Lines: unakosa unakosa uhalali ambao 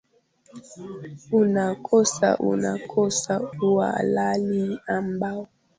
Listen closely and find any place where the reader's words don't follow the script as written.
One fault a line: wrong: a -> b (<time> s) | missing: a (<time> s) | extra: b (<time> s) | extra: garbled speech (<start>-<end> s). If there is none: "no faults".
no faults